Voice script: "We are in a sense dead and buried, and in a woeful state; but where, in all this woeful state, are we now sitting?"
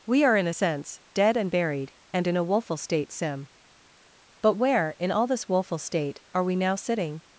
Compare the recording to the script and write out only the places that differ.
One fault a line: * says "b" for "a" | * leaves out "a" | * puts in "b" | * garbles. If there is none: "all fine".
* puts in "sim"